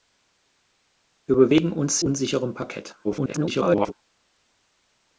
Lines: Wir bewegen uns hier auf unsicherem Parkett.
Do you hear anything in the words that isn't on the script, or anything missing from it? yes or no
yes